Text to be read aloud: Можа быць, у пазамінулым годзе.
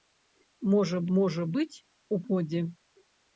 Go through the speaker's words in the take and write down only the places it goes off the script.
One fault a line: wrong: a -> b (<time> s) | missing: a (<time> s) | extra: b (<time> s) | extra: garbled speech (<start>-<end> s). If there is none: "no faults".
extra: можа (1.2 s)
missing: пазамінулым (2.2 s)